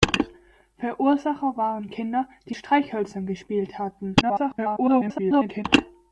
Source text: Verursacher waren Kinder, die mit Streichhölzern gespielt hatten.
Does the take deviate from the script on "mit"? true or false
true